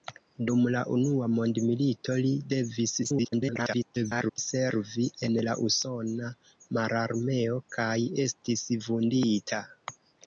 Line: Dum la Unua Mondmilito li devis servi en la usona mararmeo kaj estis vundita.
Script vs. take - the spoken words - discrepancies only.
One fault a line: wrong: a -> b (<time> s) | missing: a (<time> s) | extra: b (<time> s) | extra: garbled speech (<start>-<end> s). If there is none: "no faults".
extra: garbled speech (3.0-4.4 s)